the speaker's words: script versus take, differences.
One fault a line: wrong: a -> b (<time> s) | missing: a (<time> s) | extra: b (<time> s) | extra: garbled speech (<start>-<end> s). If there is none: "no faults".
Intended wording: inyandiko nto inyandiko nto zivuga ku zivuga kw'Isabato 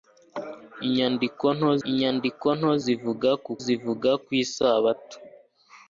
no faults